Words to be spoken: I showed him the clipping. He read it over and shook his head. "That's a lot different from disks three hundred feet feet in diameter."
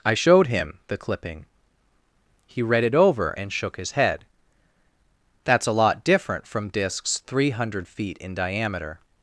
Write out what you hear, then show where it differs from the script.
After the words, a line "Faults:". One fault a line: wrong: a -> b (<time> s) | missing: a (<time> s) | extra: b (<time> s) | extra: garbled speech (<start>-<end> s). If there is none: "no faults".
I showed him the clipping. He read it over and shook his head. "That's a lot different from disks three hundred feet in diameter."
Faults:
missing: feet (8.2 s)